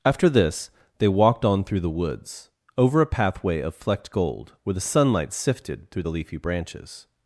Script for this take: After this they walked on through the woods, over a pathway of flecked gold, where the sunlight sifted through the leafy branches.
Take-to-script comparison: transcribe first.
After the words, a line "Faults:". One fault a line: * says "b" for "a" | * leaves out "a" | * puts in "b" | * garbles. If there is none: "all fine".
After this they walked on through the woods, over a pathway of flecked gold, where the sunlight sifted through the leafy branches.
Faults:
all fine